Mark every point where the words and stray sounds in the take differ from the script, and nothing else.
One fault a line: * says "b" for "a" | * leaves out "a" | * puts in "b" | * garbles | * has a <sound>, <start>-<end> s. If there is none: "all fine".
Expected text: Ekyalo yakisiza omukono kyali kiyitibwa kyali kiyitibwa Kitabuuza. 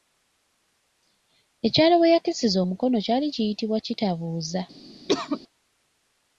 * puts in "we"
* leaves out "kyali kiyitibwa"
* has a cough, 5.1-5.4 s